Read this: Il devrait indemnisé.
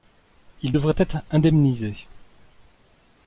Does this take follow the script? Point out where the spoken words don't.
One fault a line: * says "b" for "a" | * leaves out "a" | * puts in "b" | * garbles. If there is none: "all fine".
* puts in "être"